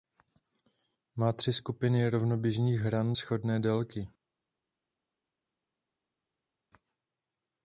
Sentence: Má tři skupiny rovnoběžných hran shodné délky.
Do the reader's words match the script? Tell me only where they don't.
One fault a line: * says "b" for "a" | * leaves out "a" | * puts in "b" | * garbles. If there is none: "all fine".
all fine